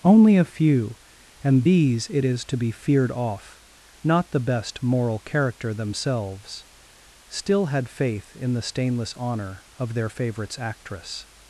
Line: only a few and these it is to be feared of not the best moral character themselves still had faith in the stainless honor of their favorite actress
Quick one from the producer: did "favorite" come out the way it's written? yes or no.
no